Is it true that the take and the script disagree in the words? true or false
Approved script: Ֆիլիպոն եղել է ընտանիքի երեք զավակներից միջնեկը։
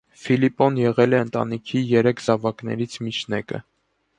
false